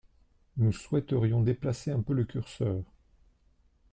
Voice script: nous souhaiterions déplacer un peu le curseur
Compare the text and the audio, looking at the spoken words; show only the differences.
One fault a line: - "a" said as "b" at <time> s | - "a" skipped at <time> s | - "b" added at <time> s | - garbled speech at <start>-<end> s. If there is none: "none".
none